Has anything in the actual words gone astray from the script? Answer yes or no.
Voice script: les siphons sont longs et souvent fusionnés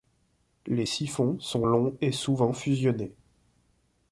no